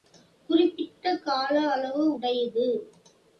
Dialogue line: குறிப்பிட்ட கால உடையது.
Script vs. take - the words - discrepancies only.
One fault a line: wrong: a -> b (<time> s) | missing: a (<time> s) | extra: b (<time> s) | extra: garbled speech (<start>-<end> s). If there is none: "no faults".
extra: அளவு (1.7 s)